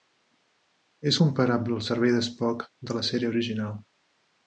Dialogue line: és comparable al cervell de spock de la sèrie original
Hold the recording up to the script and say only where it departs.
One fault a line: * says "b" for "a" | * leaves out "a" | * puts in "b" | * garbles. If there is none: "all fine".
all fine